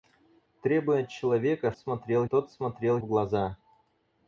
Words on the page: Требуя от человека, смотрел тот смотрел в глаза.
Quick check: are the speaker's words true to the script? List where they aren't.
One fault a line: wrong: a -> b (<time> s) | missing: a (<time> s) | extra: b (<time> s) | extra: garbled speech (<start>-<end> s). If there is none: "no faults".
no faults